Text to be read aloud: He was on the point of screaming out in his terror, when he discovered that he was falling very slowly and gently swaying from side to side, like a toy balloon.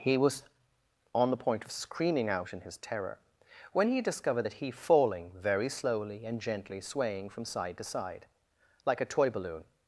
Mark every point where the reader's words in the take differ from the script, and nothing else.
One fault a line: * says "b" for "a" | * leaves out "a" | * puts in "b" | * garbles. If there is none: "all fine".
* leaves out "was"